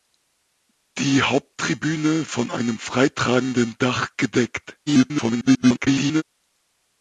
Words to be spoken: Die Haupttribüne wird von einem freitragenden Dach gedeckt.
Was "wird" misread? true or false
true